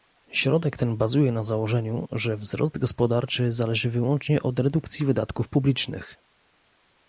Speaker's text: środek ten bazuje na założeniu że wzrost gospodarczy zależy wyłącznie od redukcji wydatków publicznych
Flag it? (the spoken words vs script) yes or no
no